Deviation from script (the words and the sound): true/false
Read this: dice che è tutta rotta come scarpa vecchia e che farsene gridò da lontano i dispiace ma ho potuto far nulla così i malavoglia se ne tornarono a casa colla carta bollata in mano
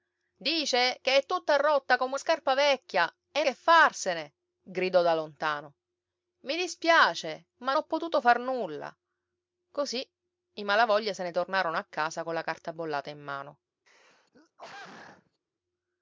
true